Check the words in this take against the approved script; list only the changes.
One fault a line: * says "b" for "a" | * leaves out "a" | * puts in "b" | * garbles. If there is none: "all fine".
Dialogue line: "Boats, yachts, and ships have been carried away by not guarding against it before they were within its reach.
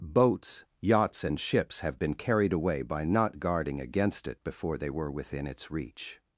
all fine